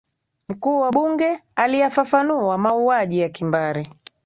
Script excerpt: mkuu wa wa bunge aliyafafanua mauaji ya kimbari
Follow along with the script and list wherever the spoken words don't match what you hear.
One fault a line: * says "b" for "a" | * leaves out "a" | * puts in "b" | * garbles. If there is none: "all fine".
* leaves out "wa"